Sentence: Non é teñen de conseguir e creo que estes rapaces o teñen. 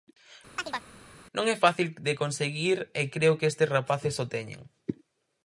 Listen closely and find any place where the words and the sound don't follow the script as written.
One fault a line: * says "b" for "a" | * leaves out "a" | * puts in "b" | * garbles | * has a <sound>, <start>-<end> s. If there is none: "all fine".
* has a chirp, 0.6-0.9 s
* says "fácil" for "teñen"